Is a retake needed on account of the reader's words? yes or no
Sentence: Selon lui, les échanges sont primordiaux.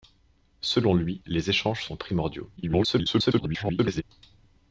yes